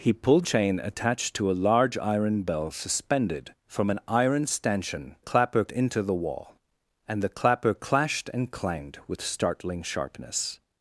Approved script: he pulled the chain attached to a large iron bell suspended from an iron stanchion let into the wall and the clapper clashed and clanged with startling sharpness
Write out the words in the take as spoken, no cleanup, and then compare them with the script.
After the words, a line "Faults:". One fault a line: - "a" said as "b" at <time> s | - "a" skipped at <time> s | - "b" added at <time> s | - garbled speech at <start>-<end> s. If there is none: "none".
he pulled chain attached to a large iron bell suspended from an iron stanchion clapper into the wall and the clapper clashed and clanged with startling sharpness
Faults:
- "the" skipped at 0.5 s
- "let" said as "clapper" at 5.2 s